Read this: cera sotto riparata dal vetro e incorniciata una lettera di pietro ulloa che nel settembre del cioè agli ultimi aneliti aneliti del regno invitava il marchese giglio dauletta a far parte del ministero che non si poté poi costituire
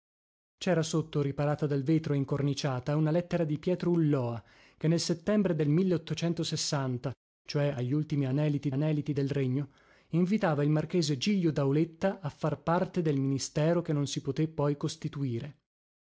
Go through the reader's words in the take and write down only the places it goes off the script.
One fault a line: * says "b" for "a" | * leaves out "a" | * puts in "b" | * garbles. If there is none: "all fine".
all fine